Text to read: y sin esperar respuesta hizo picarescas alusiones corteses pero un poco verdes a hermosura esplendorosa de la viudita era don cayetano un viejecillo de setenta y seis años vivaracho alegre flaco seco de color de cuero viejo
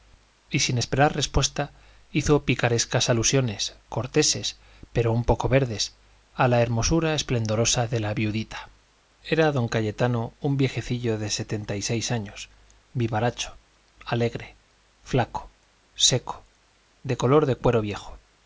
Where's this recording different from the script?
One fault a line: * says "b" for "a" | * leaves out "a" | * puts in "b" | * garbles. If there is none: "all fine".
* puts in "la"